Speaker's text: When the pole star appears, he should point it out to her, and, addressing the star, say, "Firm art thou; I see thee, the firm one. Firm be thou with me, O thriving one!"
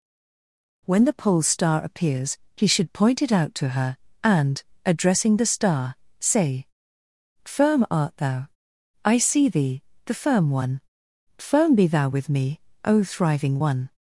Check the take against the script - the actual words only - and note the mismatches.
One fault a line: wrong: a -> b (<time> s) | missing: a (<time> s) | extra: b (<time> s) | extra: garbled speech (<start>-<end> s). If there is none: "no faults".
no faults